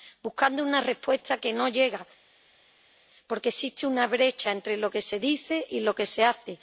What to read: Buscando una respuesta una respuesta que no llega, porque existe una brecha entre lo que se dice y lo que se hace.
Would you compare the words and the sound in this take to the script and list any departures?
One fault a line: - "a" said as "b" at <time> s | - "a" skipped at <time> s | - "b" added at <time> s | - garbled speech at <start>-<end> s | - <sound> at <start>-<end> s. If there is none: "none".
- "una respuesta" skipped at 1.4 s